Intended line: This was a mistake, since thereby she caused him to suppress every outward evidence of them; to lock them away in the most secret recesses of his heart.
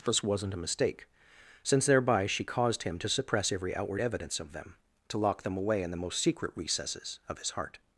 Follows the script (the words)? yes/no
no